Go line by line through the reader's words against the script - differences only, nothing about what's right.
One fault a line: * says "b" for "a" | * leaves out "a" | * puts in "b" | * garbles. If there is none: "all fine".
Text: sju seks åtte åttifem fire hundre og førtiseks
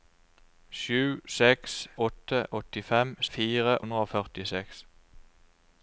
all fine